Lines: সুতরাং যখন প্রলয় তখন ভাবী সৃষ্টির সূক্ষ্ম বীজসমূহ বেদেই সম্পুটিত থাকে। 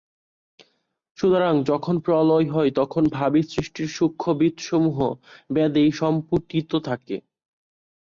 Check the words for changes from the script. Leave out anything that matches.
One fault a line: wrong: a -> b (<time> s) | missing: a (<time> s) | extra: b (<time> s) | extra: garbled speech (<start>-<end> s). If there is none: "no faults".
extra: হয় (2.5 s)